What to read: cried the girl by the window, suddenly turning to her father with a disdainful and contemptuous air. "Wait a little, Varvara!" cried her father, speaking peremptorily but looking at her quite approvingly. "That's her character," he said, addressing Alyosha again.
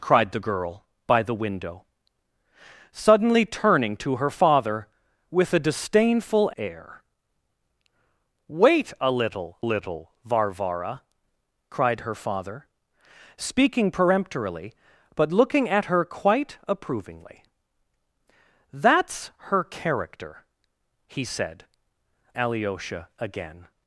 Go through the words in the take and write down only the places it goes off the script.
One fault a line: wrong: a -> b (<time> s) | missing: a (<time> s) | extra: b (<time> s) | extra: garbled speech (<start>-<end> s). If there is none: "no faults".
missing: and contemptuous (6.5 s)
extra: little (9.6 s)
missing: addressing (21.6 s)